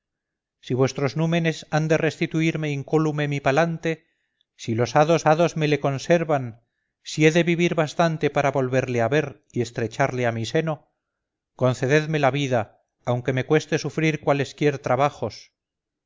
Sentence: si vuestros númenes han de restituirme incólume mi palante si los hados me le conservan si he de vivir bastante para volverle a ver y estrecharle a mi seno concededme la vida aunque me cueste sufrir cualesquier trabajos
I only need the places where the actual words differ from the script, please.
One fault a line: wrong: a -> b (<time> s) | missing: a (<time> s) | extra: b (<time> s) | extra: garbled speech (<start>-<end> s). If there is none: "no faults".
extra: hados (5.3 s)